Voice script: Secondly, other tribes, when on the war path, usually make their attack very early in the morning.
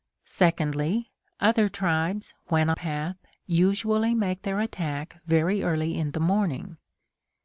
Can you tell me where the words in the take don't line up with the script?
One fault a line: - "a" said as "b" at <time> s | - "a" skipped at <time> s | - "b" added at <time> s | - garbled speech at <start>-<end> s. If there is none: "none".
- "on the war" skipped at 2.7 s